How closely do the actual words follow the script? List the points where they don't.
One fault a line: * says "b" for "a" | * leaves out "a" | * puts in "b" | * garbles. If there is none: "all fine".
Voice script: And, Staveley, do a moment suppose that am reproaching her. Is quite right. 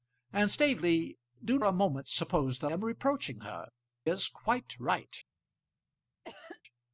all fine